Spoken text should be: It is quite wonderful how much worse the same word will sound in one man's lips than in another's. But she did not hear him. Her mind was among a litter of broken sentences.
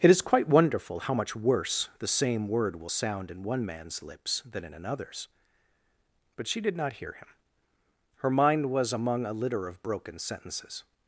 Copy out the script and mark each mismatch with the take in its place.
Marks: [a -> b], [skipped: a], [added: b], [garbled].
It is quite wonderful how much worse the same word will sound in one man's lips than in another's. But she did not hear him. Her mind was among a litter of broken sentences.